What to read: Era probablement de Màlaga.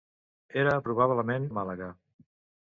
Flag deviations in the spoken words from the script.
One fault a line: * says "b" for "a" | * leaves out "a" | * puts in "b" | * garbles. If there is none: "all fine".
all fine